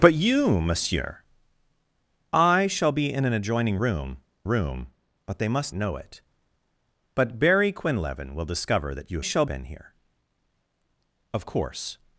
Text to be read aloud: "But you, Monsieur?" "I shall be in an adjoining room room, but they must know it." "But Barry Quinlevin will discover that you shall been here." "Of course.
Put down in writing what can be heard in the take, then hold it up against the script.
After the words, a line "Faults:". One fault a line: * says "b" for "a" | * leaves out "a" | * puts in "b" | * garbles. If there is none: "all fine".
"But you, Monsieur?" "I shall be in an adjoining room room, but they must know it." "But Barry Quinlevin will discover that you shall been here." "Of course.
Faults:
all fine